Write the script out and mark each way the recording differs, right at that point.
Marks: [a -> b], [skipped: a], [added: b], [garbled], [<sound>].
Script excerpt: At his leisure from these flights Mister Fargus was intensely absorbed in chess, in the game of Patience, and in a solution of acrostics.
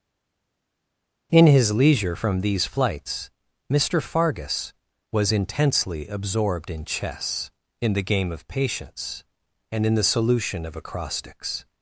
[At -> In] his leisure from these flights Mister Fargus was intensely absorbed in chess, in the game of Patience, and in [a -> the] solution of acrostics.